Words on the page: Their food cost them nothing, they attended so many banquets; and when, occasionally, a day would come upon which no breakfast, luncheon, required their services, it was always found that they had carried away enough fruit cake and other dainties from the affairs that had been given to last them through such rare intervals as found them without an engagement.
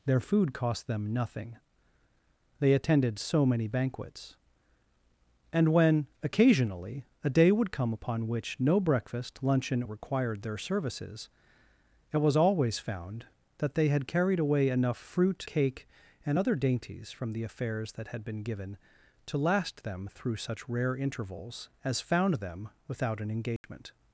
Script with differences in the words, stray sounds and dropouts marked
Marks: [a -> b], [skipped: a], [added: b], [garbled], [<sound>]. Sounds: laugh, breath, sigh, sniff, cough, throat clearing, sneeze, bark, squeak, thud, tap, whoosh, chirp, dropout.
Their food cost them nothing, they attended so many banquets; and when, occasionally, a day would come upon which no breakfast, luncheon, required their services, it was always found that they had carried away enough fruit cake and other dainties from the affairs that had been given to last them through such rare intervals as found them without an engagement. [dropout]